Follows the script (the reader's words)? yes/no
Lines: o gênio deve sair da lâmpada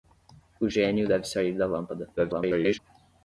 no